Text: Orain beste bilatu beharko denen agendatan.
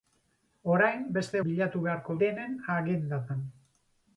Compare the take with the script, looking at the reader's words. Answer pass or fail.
pass